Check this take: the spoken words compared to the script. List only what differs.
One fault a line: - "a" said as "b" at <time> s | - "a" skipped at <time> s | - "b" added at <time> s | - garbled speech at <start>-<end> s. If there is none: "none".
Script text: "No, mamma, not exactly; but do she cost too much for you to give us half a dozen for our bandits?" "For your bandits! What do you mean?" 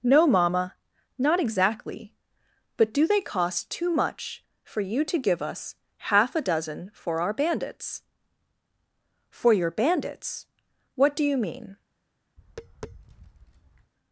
- "she" said as "they" at 3.1 s